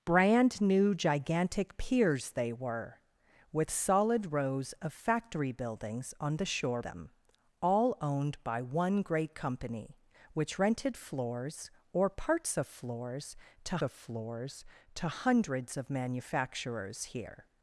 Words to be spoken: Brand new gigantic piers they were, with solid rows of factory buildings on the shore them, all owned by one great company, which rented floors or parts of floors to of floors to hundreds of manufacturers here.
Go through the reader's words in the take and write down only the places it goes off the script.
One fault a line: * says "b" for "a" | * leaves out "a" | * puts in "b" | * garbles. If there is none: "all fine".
all fine